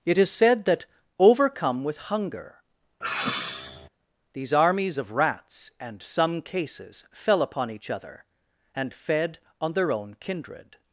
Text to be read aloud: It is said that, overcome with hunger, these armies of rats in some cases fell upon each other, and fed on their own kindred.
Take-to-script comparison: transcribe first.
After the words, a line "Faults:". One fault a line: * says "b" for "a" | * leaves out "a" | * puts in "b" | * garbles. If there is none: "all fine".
It is said that, overcome with hunger, these armies of rats and some cases fell upon each other, and fed on their own kindred.
Faults:
* says "and" for "in"